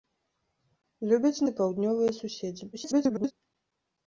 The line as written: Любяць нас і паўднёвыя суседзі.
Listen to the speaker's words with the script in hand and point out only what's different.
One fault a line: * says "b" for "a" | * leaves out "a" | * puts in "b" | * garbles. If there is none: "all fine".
* leaves out "нас"
* garbles